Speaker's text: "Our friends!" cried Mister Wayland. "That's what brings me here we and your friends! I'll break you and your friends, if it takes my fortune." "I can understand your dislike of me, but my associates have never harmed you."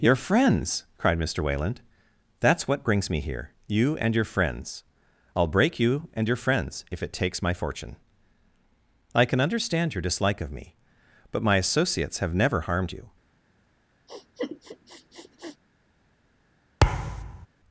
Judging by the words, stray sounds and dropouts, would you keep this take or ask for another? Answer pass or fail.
fail